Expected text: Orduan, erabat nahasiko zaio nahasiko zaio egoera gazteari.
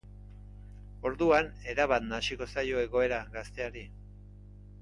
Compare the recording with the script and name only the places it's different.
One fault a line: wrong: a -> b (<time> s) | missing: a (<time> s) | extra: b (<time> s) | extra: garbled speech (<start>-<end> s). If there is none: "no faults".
missing: nahasiko zaio (2.8 s)